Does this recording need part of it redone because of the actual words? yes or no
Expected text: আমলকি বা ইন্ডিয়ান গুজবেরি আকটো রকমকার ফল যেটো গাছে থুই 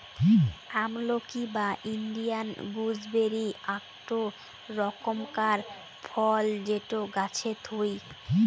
no